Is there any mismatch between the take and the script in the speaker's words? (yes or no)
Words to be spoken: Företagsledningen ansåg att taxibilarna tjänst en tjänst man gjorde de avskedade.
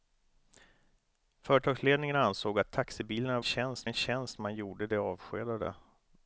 no